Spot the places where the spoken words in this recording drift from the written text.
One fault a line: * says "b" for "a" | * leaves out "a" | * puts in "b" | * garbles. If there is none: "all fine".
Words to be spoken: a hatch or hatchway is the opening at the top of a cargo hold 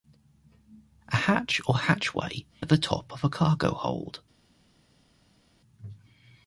* leaves out "is the opening"